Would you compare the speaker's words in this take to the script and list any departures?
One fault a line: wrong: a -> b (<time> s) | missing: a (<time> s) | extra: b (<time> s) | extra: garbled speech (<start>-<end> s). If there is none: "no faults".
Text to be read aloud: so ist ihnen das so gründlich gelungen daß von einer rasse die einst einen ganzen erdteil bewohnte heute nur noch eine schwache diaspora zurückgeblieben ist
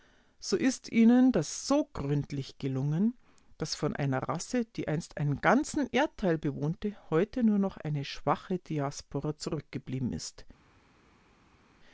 no faults